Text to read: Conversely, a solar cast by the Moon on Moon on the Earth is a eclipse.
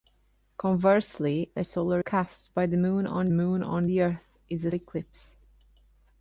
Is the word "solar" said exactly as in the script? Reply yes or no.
yes